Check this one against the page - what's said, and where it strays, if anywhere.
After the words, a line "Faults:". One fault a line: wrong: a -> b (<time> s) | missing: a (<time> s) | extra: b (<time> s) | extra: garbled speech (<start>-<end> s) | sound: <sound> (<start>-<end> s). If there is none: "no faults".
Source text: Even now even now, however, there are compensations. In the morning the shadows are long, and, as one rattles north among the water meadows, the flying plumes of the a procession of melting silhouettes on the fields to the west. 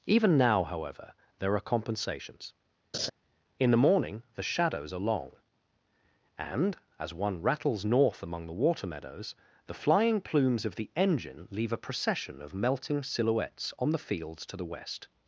Even now, however, there are compensations. In the morning the shadows are long, and, as one rattles north among the water meadows, the flying plumes of the engine leave a procession of melting silhouettes on the fields to the west.
Faults:
missing: even now (0.6 s)
sound: laugh (2.9-3.1 s)
extra: engine leave (10.9 s)